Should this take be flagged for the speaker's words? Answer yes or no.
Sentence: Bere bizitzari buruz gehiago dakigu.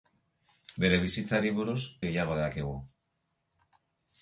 no